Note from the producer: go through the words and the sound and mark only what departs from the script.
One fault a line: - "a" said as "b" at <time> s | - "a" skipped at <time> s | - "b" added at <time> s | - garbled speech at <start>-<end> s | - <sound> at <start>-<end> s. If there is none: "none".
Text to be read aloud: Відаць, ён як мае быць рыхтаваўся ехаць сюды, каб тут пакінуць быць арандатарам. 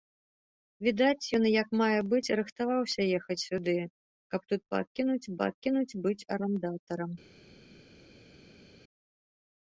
- "пакінуць" added at 5.4 s